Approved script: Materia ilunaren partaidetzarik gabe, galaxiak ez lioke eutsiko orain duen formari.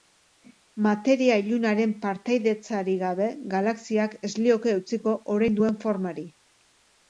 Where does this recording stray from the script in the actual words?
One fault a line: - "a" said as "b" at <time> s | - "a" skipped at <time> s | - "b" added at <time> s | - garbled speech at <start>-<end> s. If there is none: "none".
none